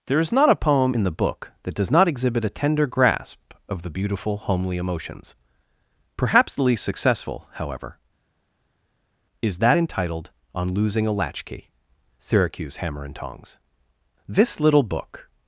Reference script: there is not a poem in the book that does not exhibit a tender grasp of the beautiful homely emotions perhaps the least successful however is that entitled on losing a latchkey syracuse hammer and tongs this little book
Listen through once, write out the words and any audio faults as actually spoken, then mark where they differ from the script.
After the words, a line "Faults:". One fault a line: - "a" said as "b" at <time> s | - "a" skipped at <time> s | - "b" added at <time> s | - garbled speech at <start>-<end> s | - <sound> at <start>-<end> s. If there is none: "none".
there is not a poem in the book that does not exhibit a tender grasp of the beautiful homely emotions perhaps the least successful however is that entitled on losing a latchkey syracuse hammer and tongs this little book
Faults:
none